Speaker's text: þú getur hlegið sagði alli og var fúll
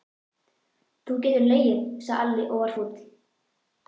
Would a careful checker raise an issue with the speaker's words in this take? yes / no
no